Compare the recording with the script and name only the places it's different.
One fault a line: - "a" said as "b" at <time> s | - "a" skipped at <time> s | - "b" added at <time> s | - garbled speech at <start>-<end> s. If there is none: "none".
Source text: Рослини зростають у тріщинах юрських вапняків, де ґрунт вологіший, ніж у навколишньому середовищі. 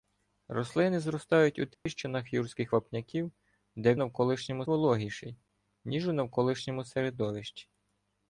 - "ґрунт" said as "навколишньому" at 3.9 s